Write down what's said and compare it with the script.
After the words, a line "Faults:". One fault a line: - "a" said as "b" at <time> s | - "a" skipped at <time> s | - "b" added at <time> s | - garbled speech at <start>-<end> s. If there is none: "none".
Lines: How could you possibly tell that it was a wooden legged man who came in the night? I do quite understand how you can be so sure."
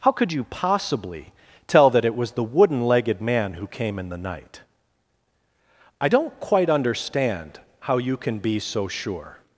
How could you possibly tell that it was the wooden legged man who came in the night? I don't quite understand how you can be so sure."
Faults:
- "a" said as "the" at 2.3 s
- "do" said as "don't" at 6.1 s